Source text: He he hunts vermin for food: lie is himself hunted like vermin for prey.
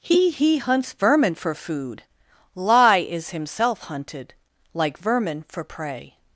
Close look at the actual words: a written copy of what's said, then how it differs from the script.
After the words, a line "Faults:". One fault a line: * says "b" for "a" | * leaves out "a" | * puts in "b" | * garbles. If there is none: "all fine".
He he hunts vermin for food: lie is himself hunted like vermin for prey.
Faults:
all fine